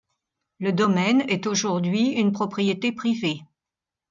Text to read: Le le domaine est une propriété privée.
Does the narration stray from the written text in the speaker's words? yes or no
yes